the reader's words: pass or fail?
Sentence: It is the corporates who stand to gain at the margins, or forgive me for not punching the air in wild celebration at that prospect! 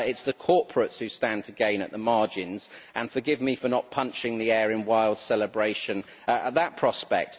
fail